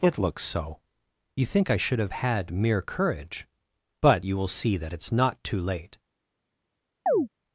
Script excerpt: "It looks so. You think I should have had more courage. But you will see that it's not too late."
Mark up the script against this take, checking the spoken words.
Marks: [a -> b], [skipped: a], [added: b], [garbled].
"It looks so. You think I should have had [more -> mere] courage. But you will see that it's not too late."